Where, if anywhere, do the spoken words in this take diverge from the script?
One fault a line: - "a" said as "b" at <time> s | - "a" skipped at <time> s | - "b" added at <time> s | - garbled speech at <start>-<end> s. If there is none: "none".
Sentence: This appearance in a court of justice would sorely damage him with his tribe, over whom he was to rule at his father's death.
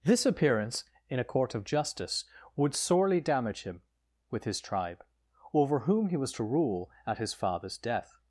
none